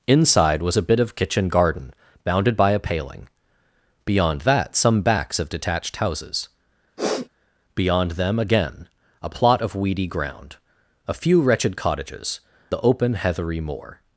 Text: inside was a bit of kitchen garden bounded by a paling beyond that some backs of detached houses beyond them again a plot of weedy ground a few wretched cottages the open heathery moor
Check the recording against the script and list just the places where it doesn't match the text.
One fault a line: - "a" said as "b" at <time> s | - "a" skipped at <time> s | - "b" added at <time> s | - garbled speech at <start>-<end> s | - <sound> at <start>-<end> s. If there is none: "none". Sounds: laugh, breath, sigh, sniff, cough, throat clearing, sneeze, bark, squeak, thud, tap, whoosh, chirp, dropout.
- sniff at 7.0-7.3 s